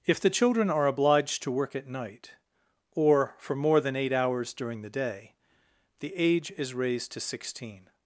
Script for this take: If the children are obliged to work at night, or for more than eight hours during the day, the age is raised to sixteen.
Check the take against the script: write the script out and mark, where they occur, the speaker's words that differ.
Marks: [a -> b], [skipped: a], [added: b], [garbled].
If the children are obliged to work at night, or for more than eight hours during the day, the age is raised to sixteen.